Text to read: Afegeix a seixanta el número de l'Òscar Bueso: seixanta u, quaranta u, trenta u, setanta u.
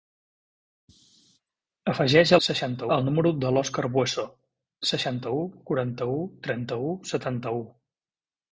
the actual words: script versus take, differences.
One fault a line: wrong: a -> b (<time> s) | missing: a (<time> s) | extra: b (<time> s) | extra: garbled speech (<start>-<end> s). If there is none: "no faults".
no faults